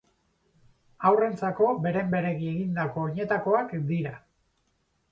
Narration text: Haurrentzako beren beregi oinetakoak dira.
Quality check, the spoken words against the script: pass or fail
fail